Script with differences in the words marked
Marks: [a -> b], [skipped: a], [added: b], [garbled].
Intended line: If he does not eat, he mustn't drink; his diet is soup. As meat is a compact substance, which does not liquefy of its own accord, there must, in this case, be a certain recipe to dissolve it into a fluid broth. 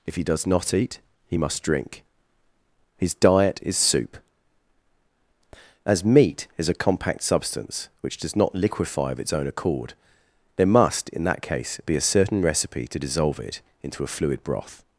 If he does not eat, he [mustn't -> must] drink; his diet is soup. As meat is a compact substance, which does not liquefy of its own accord, there must, in [this -> that] case, be a certain recipe to dissolve it into a fluid broth.